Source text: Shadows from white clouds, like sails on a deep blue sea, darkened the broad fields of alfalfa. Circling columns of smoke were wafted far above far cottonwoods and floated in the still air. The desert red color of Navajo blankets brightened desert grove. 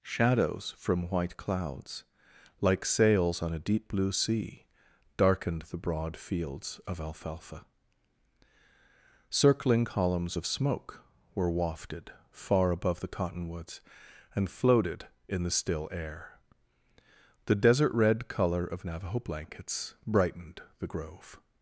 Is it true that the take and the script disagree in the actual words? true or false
true